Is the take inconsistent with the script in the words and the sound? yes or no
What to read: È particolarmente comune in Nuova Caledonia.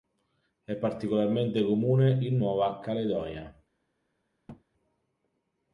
yes